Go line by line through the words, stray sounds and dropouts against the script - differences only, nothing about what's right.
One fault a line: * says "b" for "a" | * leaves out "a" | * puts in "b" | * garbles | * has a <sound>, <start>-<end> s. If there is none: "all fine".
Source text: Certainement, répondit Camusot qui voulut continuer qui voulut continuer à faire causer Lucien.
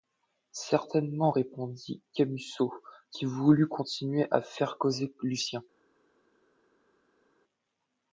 * leaves out "qui voulut continuer"